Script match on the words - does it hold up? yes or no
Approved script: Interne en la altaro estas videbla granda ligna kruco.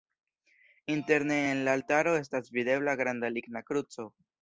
yes